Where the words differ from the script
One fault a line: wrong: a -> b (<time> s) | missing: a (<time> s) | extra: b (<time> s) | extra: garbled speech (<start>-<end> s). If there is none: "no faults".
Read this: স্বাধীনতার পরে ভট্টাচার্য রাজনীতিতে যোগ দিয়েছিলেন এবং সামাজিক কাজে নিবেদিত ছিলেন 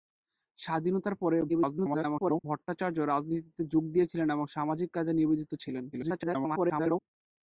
extra: garbled speech (1.5-2.4 s)
extra: garbled speech (5.9-7.0 s)